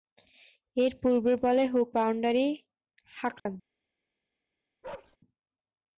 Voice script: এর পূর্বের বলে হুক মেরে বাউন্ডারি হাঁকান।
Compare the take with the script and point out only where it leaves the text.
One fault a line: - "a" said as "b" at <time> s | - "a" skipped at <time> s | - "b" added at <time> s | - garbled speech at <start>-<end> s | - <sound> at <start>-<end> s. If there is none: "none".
- "মেরে" skipped at 1.9 s
- dropout at 3.4-3.5 s
- bark at 4.8-5.2 s